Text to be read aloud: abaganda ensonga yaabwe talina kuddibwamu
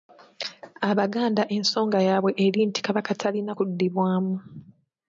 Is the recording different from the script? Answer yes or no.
yes